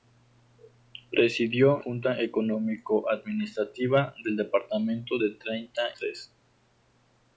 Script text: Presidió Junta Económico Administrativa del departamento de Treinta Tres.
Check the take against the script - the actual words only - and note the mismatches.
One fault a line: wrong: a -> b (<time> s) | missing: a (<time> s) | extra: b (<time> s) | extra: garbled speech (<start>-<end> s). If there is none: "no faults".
no faults